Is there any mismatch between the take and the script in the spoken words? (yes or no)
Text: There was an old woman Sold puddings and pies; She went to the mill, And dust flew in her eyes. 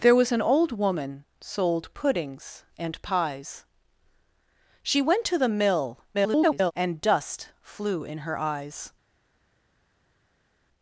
yes